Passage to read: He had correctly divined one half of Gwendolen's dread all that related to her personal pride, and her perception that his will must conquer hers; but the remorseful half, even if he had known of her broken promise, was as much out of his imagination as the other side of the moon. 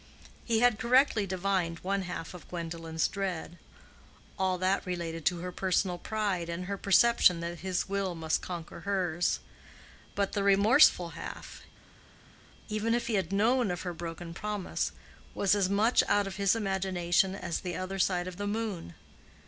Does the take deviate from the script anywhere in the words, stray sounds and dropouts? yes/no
no